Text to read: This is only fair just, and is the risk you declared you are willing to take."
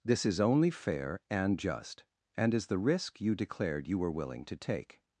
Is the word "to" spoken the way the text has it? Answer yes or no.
yes